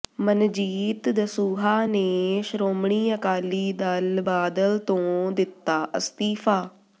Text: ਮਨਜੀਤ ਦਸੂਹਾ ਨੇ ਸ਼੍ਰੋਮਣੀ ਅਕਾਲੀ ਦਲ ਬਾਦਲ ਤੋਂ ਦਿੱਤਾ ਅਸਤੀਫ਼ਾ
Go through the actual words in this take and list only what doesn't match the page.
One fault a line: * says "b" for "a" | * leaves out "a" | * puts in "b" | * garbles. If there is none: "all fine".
all fine